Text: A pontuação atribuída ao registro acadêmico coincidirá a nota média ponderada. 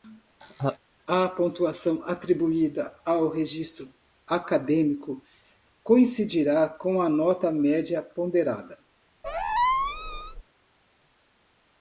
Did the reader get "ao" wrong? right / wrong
right